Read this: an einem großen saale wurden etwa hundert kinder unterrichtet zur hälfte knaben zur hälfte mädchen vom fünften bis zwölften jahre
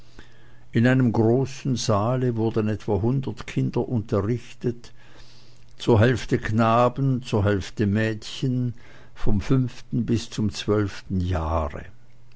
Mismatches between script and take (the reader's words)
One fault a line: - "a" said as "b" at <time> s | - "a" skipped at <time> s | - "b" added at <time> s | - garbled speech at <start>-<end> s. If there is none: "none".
- "an" said as "in" at 0.7 s
- "zum" added at 10.3 s